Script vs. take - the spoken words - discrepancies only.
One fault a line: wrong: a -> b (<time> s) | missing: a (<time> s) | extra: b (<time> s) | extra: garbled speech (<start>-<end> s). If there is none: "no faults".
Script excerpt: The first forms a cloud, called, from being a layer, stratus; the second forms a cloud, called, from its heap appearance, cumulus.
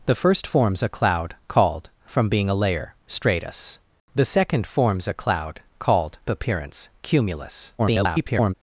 missing: from its heap (6.2 s)
extra: garbled speech (7.8-8.5 s)